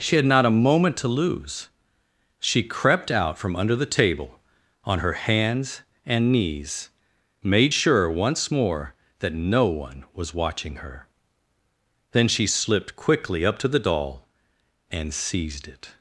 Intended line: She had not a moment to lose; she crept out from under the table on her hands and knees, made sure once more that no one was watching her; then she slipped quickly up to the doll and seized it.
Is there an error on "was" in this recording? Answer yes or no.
no